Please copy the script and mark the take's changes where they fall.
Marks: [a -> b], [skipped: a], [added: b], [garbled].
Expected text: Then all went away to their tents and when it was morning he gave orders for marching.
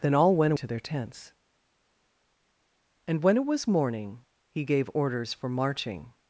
Then all went [skipped: away] to their tents and when it was morning he gave orders for marching.